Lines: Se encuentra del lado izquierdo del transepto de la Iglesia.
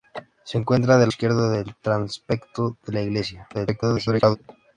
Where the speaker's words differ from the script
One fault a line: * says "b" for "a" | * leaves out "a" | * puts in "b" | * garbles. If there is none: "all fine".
* leaves out "lado"
* garbles